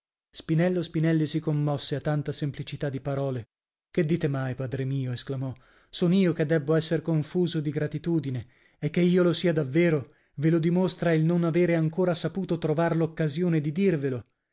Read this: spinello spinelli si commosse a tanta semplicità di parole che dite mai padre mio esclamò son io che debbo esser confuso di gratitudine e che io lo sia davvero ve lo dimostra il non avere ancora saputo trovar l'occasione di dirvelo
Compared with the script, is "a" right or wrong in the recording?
right